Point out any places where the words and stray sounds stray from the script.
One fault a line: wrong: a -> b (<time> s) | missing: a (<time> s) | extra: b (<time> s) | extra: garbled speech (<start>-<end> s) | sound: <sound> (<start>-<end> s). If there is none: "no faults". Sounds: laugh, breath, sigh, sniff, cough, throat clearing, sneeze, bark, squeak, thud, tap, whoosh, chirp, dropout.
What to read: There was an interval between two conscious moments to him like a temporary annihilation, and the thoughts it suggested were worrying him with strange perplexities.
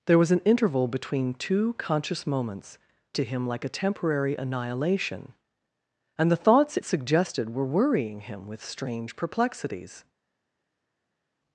no faults